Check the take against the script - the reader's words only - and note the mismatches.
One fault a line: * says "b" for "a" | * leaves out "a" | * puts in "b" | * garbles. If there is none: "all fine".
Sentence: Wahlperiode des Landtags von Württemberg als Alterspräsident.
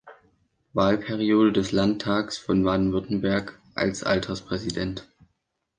* puts in "Baden"